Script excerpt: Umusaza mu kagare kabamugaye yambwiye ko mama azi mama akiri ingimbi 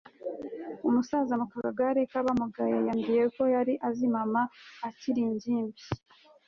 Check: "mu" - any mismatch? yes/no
no